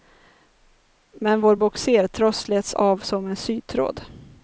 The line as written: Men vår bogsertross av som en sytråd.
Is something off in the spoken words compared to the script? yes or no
yes